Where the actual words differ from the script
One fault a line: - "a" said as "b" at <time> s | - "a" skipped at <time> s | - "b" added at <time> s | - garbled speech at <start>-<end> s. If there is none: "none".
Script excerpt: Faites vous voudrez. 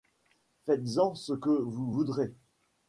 - "en ce que" added at 1.0 s